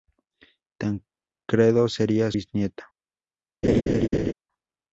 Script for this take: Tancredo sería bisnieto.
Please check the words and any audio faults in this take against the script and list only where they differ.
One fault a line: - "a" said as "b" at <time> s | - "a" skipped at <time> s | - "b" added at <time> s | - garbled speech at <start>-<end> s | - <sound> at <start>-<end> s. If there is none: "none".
- laugh at 3.6-4.3 s